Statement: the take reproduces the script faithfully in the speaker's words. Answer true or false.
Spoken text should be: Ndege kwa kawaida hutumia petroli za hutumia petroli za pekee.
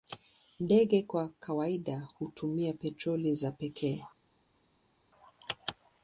false